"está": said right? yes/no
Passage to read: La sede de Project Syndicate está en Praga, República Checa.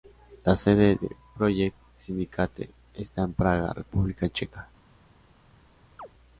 yes